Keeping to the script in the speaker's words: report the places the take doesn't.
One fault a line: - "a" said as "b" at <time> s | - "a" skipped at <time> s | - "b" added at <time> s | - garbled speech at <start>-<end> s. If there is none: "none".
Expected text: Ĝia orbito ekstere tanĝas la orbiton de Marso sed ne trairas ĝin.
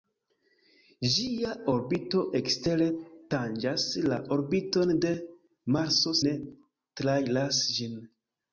- "sed" skipped at 6.2 s